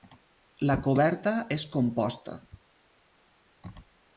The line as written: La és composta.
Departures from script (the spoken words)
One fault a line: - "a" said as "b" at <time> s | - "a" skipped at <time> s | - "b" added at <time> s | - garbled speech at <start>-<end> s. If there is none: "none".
- "coberta" added at 0.9 s